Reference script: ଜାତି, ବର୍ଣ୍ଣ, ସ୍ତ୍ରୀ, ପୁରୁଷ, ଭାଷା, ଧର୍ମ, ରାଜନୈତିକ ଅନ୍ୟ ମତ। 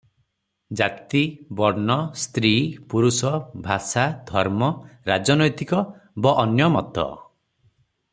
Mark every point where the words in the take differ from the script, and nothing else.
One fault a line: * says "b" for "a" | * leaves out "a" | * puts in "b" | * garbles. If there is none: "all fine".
* puts in "ବ"